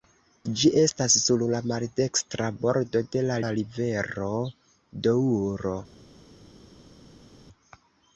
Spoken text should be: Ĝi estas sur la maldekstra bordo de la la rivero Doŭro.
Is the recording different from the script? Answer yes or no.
no